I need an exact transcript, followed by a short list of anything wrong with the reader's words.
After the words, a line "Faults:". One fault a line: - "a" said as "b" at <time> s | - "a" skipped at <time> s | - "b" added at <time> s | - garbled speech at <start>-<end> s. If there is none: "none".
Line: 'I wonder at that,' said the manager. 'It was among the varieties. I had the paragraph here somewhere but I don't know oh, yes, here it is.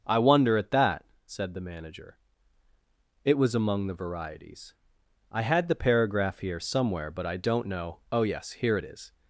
'I wonder at that,' said the manager. 'It was among the varieties. I had the paragraph here somewhere but I don't know oh, yes, here it is.
Faults:
none